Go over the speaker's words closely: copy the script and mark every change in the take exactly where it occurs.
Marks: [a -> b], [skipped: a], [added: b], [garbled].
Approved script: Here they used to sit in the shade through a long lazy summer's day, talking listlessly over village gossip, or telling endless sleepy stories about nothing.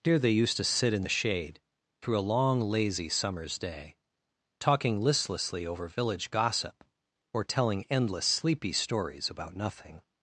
Here they used to sit in the shade through a long lazy summer's day, talking listlessly over village gossip, or telling endless sleepy stories about nothing.